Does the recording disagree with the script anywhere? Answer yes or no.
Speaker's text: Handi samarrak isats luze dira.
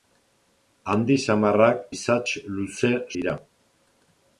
no